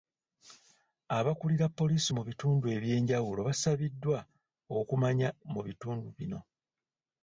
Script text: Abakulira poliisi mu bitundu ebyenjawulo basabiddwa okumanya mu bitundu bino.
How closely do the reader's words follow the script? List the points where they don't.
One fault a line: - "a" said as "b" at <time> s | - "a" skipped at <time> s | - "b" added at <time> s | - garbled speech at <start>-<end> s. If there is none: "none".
none